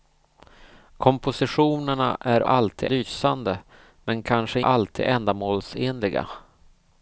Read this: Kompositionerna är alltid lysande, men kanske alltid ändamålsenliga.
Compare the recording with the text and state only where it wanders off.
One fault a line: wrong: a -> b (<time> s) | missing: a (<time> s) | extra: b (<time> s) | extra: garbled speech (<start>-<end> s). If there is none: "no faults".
no faults